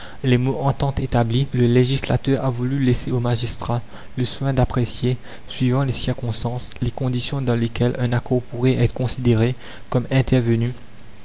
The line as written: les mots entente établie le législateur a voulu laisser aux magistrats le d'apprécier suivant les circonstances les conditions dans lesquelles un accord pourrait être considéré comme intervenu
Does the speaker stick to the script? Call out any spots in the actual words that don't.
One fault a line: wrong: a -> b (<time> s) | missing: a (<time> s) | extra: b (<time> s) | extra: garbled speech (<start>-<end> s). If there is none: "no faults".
extra: soin (4.2 s)